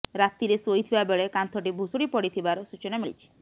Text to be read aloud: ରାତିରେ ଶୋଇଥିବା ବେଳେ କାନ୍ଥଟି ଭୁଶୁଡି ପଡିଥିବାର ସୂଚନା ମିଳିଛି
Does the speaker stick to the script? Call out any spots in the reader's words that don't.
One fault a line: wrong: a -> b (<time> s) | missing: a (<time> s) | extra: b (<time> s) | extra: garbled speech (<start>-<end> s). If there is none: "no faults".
no faults